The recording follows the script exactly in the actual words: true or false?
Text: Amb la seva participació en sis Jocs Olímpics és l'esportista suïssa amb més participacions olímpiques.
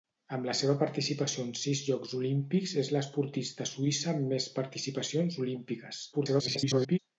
false